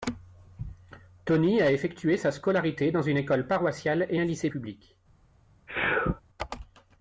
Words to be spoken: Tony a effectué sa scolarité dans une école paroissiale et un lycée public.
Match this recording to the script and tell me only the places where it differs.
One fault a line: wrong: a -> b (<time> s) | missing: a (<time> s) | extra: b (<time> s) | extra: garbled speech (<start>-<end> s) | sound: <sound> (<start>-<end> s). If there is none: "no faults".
sound: sneeze (5.7-6.2 s)